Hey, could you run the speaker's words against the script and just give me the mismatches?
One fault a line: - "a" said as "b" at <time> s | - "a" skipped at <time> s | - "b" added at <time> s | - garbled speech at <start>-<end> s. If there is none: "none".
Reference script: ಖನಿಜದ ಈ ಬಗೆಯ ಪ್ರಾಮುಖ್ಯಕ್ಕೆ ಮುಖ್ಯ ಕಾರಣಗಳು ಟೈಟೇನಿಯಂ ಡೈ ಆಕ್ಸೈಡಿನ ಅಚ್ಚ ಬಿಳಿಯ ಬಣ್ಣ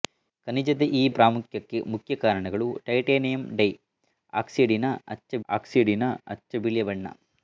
- "ಬಗೆಯ" skipped at 1.1 s
- "ಆಕ್ಸೈಡಿನ ಅಚ್ಚ" added at 5.5 s